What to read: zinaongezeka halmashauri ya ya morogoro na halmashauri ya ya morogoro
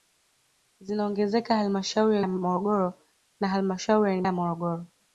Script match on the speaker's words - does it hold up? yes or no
yes